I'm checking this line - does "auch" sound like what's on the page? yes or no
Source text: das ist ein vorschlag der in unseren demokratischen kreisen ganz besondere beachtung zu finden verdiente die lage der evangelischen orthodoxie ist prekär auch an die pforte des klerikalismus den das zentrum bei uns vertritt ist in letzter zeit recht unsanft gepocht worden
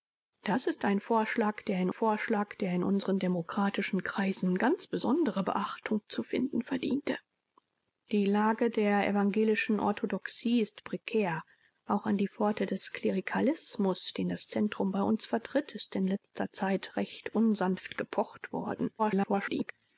yes